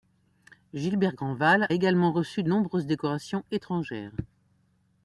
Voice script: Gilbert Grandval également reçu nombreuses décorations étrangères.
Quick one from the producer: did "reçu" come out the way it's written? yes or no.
yes